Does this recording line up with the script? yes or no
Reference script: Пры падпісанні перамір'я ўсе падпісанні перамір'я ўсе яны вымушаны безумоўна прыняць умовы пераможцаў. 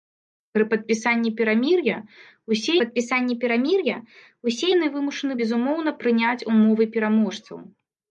yes